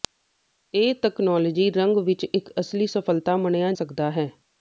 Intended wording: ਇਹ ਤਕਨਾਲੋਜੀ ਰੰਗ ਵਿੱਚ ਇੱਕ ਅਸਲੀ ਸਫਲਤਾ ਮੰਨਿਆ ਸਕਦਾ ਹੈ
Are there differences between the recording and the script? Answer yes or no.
no